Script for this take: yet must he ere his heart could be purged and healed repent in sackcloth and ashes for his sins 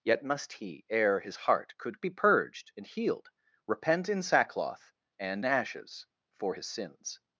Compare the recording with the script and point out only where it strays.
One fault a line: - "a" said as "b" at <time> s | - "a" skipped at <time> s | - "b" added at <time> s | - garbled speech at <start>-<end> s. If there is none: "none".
none